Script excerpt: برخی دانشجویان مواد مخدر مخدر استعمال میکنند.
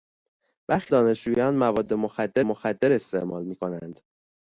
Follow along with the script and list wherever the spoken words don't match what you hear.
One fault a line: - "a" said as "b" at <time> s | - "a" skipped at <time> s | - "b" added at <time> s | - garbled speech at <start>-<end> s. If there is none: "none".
none